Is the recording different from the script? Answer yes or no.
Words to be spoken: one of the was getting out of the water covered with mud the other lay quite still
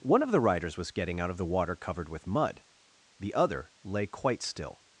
yes